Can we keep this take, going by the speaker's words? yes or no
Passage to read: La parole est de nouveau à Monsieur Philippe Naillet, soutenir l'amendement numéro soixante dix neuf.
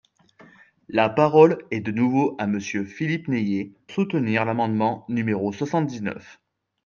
yes